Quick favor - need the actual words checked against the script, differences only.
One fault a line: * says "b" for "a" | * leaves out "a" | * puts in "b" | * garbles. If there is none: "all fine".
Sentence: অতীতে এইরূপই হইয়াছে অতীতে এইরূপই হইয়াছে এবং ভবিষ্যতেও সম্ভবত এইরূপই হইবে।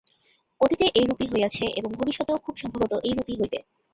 * leaves out "অতীতে এইরূপই হইয়াছে"
* puts in "খুব"